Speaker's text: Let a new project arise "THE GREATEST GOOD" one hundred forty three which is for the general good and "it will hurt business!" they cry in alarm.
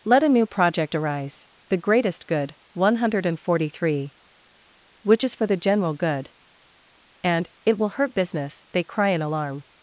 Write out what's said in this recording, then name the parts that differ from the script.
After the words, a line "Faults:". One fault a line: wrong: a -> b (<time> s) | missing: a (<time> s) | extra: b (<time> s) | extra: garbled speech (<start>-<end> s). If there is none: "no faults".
Let a new project arise "THE GREATEST GOOD" one hundred forty three which is for the general good and "it will hurt business!" they cry in alarm.
Faults:
no faults